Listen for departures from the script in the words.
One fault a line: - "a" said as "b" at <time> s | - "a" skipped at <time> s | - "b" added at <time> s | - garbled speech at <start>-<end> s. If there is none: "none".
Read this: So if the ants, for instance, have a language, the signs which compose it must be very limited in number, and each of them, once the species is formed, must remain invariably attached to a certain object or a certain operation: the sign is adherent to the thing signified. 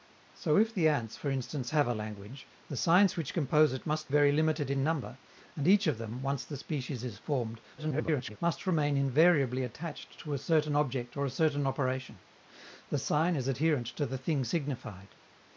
- "be" skipped at 4.1 s
- garbled speech at 7.8-8.4 s